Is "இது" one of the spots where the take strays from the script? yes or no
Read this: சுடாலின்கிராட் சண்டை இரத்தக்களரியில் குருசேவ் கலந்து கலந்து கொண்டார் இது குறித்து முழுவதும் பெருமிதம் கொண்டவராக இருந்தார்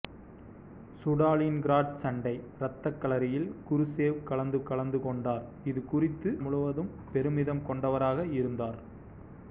no